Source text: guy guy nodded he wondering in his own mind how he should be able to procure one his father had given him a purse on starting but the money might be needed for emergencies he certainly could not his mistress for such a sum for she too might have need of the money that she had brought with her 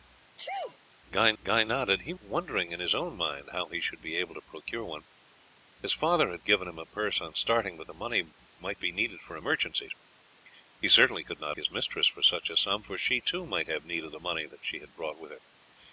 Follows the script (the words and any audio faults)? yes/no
no